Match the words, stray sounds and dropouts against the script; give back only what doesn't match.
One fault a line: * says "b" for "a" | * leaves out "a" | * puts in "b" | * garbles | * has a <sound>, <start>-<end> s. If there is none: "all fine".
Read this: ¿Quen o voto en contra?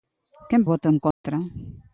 * has a dropout, 1.1-1.2 s